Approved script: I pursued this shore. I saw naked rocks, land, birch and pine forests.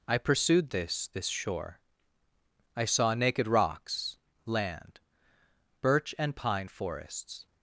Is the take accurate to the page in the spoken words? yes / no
no